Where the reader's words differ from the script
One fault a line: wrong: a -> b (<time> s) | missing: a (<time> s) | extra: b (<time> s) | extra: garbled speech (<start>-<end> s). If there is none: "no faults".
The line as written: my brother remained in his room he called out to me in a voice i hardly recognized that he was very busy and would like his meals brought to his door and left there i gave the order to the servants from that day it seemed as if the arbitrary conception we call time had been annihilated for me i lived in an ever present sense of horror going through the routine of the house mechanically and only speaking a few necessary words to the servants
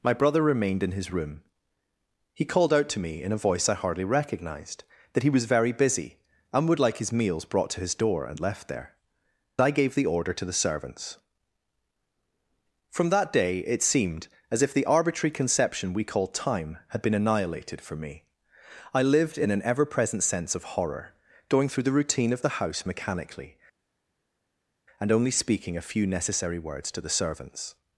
no faults